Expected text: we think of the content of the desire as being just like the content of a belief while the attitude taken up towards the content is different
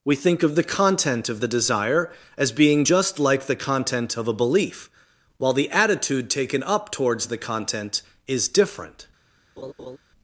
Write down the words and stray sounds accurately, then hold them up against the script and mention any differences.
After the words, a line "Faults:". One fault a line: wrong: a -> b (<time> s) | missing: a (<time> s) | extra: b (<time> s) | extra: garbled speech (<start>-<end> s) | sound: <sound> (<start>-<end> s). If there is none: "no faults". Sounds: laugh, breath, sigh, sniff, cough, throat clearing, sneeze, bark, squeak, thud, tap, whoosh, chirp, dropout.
we think of the content of the desire as being just like the content of a belief while the attitude taken up towards the content is different
Faults:
sound: laugh (9.6-10.0 s)